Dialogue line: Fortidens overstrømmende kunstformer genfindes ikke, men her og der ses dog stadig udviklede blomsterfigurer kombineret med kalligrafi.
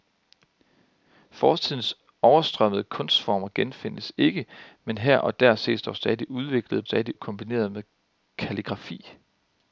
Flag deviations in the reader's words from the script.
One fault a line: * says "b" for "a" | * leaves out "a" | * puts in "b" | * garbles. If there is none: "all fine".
* says "stadig" for "blomsterfigurer"